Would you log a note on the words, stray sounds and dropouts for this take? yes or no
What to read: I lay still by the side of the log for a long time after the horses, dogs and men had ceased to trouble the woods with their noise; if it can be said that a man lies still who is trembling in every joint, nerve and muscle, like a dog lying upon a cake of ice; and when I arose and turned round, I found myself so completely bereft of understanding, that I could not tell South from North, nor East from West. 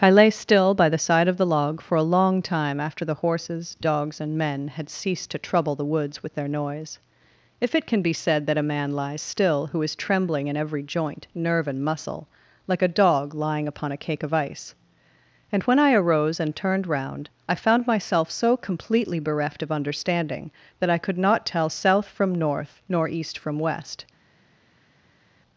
no